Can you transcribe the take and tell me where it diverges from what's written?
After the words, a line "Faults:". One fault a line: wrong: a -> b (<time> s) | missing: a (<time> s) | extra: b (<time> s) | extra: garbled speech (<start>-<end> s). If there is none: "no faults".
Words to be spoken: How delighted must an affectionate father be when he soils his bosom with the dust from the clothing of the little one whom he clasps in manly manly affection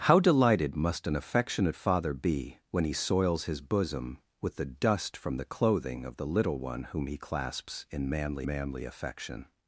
How delighted must an affectionate father be when he soils his bosom with the dust from the clothing of the little one whom he clasps in manly manly affection
Faults:
no faults